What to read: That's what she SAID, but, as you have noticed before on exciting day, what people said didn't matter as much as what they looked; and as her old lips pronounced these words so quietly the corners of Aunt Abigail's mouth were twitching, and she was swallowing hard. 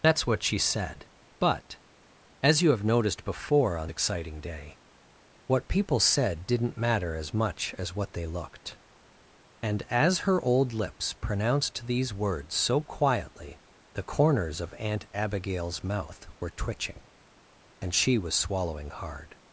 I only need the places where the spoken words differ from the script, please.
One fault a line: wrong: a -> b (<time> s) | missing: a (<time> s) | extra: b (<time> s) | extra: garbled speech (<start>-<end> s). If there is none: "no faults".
no faults